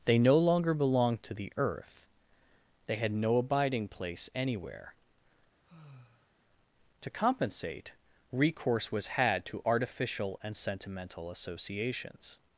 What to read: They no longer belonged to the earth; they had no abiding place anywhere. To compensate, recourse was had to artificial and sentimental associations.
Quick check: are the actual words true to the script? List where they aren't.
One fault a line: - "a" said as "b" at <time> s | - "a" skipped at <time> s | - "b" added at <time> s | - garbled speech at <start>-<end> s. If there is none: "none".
none